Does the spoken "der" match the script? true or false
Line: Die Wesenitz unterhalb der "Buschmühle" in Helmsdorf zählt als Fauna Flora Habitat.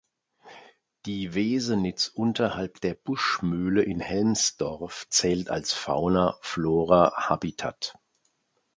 true